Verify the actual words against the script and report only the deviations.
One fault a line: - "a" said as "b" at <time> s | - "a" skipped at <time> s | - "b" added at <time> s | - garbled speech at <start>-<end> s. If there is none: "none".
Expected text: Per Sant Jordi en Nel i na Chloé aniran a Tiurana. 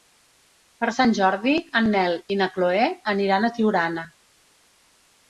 none